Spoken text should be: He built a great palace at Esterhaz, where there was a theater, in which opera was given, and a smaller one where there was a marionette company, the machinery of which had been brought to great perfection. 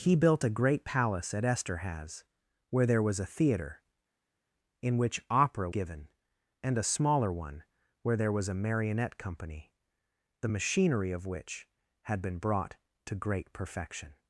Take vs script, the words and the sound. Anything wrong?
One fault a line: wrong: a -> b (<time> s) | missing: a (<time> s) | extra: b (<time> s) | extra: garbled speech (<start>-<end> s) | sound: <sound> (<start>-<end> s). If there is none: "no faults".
missing: was (5.7 s)